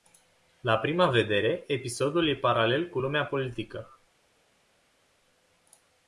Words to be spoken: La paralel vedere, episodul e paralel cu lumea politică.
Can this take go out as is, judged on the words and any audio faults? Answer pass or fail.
fail